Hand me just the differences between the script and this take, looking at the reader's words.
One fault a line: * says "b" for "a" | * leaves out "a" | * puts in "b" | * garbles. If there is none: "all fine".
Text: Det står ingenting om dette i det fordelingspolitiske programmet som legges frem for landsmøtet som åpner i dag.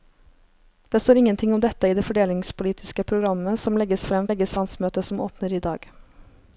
* says "legges" for "for"